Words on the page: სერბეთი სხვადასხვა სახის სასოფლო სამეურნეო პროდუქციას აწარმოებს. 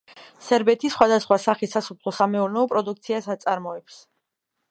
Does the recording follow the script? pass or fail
pass